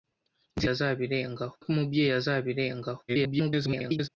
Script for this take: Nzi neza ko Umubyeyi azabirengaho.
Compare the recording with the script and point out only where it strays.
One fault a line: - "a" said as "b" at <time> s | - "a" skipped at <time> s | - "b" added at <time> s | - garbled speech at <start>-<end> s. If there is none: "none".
- "neza" said as "azabirengaho" at 0.7 s
- garbled speech at 3.1-4.1 s